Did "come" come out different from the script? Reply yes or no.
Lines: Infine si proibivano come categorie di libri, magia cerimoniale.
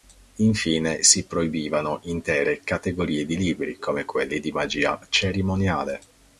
yes